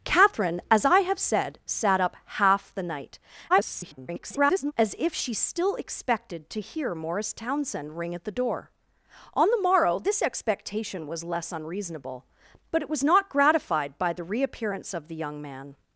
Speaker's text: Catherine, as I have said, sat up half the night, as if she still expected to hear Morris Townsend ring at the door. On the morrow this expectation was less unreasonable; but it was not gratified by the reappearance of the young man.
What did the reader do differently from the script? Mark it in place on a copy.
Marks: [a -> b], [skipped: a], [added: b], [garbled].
Catherine, as I have said, sat up half the night, [garbled] as if she still expected to hear Morris Townsend ring at the door. On the morrow this expectation was less unreasonable; but it was not gratified by the reappearance of the young man.